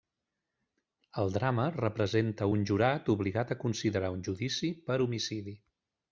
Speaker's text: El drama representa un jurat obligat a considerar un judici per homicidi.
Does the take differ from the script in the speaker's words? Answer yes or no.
no